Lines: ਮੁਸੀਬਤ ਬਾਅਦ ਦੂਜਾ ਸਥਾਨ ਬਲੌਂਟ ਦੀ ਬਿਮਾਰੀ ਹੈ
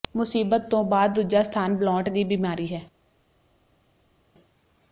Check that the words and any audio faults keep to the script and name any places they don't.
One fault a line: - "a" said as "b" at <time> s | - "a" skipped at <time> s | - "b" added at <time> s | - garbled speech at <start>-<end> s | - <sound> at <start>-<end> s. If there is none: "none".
- "ਤੋਂ" added at 0.7 s